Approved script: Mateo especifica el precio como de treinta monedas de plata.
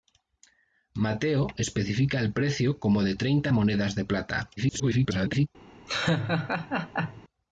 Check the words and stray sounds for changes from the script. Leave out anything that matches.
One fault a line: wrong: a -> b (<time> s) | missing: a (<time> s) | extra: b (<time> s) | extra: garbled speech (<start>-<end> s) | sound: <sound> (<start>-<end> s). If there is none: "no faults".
extra: garbled speech (4.6-5.5 s)
sound: laugh (5.9-7.2 s)